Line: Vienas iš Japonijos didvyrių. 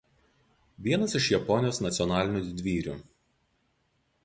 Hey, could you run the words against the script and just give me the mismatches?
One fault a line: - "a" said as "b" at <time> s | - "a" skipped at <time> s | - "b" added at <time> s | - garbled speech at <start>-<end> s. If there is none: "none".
- "nacionalinių" added at 1.9 s